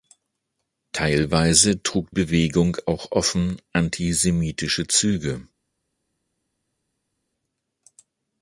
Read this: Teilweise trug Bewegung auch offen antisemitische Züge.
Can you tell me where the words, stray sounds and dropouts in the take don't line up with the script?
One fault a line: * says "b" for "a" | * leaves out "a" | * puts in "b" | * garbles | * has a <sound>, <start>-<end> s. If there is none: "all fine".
all fine